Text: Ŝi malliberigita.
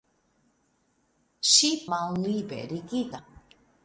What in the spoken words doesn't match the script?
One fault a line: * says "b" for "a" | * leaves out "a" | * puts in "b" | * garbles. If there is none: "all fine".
all fine